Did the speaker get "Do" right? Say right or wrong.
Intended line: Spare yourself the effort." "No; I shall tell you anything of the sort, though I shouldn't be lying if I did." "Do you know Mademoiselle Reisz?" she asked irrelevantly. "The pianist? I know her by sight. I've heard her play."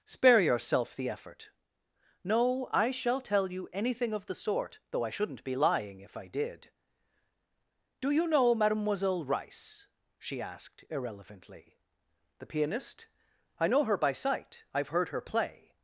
right